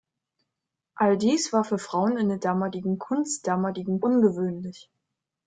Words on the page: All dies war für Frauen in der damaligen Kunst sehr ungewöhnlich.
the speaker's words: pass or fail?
fail